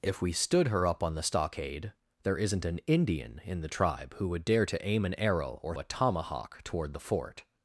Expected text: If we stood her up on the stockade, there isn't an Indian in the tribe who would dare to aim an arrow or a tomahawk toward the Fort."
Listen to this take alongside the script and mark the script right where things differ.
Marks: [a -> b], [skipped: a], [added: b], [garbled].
If we stood her up on the stockade, there isn't an Indian in the tribe who would dare to aim an arrow or a tomahawk toward the Fort."